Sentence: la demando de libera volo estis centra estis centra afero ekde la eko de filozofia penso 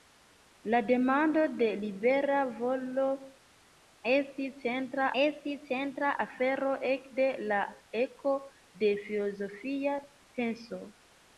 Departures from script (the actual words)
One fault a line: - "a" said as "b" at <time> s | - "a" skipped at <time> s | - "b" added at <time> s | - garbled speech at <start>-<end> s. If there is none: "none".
none